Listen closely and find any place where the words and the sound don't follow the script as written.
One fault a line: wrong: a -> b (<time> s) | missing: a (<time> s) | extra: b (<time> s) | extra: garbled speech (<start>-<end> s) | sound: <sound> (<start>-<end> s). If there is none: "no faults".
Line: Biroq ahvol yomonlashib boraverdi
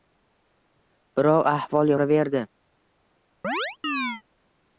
missing: yomonlashib (1.9 s)
sound: chirp (3.4-4.2 s)